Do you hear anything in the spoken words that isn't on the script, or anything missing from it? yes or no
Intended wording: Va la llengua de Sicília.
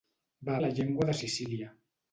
no